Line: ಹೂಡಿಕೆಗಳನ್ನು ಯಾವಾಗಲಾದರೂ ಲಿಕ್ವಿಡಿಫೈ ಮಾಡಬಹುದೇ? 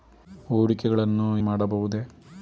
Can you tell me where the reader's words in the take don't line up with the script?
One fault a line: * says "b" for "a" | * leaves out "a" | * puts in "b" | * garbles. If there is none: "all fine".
* leaves out "ಯಾವಾಗಲಾದರೂ ಲಿಕ್ವಿಡಿಫೈ"